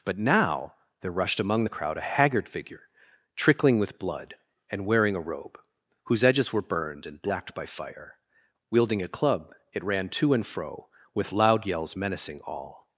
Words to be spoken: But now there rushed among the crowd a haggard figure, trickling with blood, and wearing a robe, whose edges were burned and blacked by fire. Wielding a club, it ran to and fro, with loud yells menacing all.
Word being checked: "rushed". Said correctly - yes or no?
yes